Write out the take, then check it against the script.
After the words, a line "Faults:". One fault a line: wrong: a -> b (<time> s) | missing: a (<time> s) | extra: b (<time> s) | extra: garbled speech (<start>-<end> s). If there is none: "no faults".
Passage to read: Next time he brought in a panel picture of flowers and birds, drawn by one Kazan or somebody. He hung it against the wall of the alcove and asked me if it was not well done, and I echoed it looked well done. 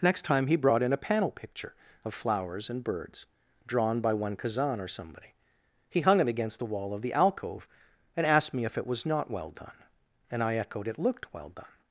Next time he brought in a panel picture of flowers and birds, drawn by one Kazan or somebody. He hung it against the wall of the alcove and asked me if it was not well done, and I echoed it looked well done.
Faults:
no faults